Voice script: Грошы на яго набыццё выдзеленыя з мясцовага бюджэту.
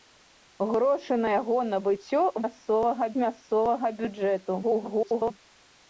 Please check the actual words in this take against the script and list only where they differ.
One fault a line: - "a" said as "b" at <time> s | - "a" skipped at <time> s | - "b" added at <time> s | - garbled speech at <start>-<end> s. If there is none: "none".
- "выдзеленыя" said as "мясцовага" at 2.4 s
- garbled speech at 4.6-5.3 s